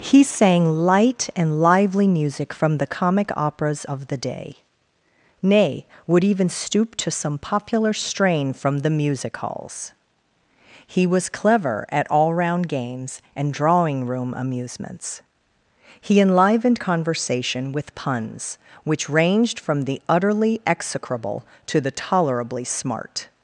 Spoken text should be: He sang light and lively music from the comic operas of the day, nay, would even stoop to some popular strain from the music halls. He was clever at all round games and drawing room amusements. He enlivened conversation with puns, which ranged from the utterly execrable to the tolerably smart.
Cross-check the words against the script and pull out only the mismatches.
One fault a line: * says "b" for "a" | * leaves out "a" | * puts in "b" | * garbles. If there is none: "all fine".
all fine